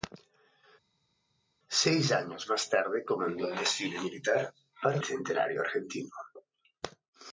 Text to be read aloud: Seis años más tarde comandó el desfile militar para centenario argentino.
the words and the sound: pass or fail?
pass